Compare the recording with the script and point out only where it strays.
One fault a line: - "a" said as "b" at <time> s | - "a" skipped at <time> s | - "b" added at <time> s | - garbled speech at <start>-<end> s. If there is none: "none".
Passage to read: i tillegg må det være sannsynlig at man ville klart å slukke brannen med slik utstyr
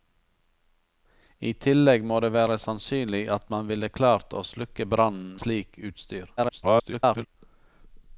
- "med" skipped at 5.4 s
- garbled speech at 6.4-7.3 s